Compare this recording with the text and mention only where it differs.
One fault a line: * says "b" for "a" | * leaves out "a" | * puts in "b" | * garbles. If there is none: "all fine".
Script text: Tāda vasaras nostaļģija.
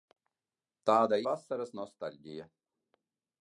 all fine